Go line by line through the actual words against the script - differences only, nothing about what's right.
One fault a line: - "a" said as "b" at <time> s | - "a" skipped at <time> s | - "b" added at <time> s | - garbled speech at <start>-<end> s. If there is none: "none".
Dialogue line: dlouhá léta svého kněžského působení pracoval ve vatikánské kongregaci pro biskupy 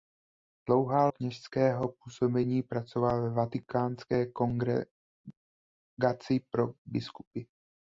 - "léta svého" skipped at 1.1 s